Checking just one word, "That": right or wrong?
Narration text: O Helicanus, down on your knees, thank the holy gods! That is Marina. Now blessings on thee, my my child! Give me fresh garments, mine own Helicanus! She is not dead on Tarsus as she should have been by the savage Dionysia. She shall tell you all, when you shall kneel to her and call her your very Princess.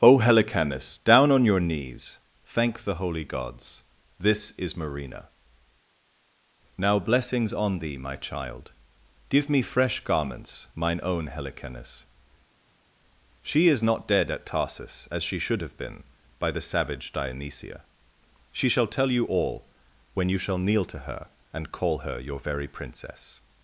wrong